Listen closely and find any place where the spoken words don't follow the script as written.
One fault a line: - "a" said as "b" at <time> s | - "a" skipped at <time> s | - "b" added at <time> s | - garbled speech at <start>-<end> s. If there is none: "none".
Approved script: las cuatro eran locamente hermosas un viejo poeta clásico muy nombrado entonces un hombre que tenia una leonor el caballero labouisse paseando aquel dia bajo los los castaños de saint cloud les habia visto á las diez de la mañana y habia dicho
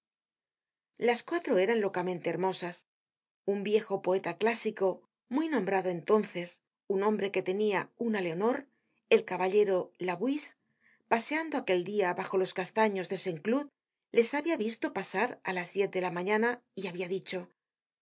- "los" skipped at 12.6 s
- "pasar" added at 15.0 s